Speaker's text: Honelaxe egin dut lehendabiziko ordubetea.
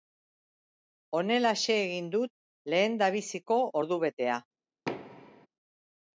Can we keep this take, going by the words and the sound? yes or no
no